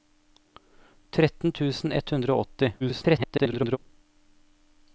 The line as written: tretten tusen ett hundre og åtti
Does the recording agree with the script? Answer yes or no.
no